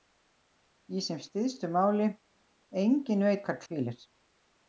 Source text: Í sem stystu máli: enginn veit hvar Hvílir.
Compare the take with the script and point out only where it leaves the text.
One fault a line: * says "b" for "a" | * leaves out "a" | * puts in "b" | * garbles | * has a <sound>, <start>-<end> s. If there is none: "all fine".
all fine